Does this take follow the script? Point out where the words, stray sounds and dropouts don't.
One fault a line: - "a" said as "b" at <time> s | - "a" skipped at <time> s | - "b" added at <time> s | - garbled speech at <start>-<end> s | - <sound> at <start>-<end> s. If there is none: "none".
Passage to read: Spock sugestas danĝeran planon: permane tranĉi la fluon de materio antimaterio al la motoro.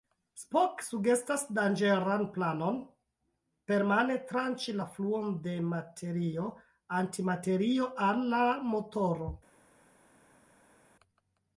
none